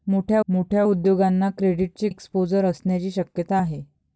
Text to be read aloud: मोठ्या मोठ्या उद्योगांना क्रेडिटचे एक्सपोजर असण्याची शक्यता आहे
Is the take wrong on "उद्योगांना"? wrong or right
right